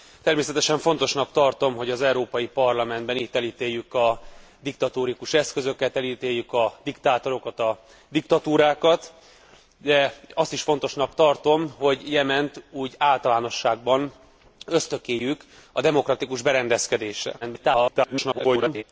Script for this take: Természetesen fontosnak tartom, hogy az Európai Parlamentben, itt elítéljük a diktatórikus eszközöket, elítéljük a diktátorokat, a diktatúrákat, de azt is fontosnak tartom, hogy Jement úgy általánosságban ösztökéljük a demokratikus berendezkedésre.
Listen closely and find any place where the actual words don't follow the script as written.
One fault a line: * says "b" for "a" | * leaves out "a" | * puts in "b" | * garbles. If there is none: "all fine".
* garbles